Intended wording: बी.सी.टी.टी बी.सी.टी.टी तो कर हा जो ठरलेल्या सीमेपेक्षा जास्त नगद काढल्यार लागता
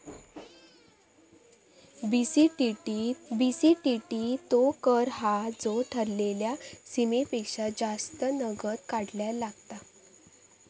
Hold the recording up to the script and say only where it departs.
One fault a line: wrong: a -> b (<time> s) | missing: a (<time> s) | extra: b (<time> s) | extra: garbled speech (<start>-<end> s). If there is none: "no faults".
no faults